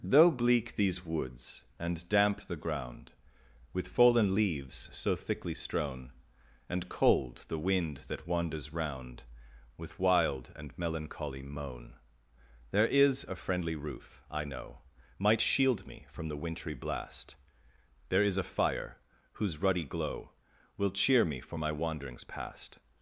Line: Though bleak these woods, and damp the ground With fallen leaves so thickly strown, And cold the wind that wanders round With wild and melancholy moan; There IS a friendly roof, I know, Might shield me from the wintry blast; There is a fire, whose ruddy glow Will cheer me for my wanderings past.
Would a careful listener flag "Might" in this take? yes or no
no